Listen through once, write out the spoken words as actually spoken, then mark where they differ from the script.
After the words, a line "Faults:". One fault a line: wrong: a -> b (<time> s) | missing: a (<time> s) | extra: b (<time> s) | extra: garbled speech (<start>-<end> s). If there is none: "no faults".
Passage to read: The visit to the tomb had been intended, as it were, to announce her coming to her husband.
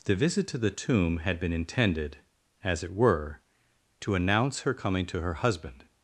The visit to the tomb had been intended, as it were, to announce her coming to her husband.
Faults:
no faults